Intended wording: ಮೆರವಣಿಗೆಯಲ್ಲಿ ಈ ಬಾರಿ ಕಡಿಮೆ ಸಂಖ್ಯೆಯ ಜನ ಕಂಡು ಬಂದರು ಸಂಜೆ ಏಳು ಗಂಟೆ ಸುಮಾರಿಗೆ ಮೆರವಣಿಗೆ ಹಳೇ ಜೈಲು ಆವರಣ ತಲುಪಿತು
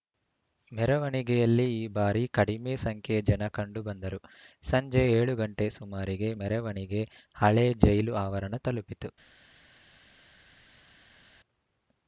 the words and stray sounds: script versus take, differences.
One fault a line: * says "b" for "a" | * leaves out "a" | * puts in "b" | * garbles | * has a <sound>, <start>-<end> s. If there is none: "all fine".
all fine